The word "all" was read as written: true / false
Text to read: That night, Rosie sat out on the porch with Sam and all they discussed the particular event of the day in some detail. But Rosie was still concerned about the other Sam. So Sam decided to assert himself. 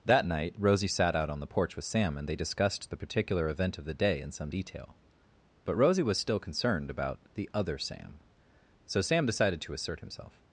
false